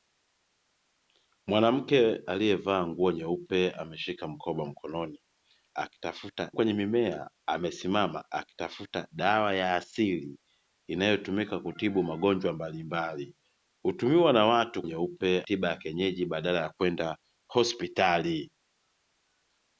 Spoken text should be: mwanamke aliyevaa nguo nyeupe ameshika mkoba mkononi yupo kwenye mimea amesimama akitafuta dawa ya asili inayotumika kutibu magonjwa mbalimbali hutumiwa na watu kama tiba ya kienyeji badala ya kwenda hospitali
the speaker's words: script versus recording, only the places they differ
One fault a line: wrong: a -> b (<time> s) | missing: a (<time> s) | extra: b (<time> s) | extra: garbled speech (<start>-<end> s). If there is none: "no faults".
wrong: yupo -> akitafuta (5.7 s)
wrong: kama -> nyeupe (14.8 s)